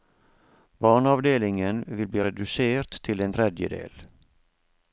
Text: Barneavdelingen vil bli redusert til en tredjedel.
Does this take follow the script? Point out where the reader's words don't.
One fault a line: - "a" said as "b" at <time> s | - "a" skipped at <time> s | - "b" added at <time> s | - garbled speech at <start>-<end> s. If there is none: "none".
none